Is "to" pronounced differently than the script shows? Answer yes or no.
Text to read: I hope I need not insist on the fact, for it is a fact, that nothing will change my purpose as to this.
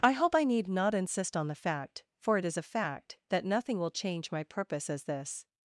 yes